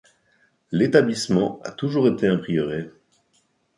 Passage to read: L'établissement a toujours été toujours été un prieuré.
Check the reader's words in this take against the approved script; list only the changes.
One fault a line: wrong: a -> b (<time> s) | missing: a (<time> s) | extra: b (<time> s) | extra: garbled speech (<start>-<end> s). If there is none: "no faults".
missing: toujours été (2.2 s)